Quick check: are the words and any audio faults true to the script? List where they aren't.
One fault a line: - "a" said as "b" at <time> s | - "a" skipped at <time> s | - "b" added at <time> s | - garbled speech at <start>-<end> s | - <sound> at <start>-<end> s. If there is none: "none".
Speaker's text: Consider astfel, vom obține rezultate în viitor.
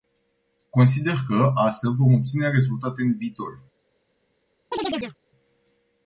- "că" added at 1.3 s
- chirp at 4.7-5.2 s